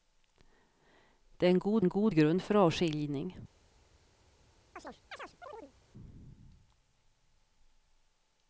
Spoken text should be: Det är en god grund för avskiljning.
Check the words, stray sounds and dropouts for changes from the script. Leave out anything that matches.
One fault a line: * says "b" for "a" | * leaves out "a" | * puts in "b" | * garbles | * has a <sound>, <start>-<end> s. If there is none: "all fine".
* puts in "en god"
* has a chirp, 4.8-5.7 s